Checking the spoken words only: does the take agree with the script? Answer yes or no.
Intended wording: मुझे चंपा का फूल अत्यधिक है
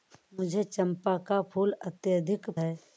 yes